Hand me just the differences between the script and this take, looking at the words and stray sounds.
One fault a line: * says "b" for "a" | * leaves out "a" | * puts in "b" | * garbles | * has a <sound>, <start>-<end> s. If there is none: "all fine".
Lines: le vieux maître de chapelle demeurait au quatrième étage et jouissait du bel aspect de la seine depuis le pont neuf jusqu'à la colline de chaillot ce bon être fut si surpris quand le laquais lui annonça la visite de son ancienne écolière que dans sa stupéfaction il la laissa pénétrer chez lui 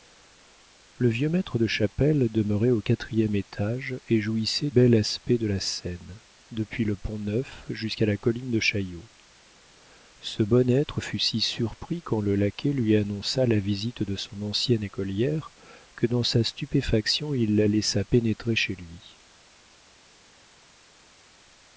* leaves out "du"